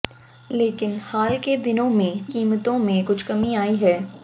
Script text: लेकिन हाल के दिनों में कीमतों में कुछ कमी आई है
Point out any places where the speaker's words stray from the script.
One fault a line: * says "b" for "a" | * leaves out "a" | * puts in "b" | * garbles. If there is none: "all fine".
all fine